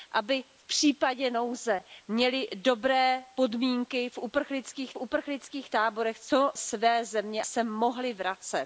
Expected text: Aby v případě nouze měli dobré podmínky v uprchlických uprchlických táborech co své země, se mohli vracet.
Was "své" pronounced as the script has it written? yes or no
yes